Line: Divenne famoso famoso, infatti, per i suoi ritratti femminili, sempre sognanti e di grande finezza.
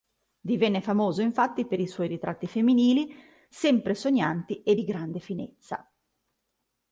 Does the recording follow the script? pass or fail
fail